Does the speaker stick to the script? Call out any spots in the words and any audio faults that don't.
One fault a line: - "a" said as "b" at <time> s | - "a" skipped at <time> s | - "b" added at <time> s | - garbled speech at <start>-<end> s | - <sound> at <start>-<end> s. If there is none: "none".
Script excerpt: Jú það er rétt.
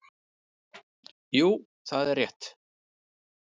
none